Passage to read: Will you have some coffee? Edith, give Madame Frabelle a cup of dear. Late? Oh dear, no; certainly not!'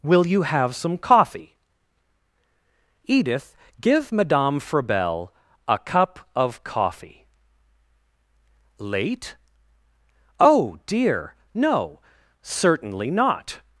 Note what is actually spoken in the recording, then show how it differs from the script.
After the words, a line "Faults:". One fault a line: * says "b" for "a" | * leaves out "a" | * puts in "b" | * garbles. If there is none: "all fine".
Will you have some coffee? Edith, give Madame Frabelle a cup of coffee. Late? Oh dear, no; certainly not!'
Faults:
* says "coffee" for "dear"